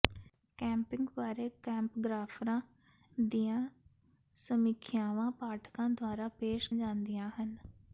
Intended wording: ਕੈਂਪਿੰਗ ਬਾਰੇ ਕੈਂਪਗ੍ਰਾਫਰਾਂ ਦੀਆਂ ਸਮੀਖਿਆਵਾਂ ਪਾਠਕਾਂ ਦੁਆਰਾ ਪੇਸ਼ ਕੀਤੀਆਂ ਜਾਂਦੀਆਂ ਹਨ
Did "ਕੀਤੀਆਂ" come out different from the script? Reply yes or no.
yes